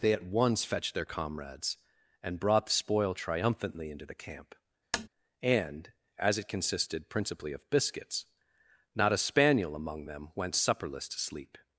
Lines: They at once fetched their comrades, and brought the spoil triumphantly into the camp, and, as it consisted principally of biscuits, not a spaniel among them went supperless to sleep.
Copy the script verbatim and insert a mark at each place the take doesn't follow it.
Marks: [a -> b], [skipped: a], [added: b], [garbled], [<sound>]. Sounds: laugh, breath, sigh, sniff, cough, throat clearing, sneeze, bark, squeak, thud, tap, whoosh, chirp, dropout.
They at once fetched their comrades, and brought the spoil triumphantly into the camp, [tap] and, as it consisted principally of biscuits, not a spaniel among them went supperless to sleep.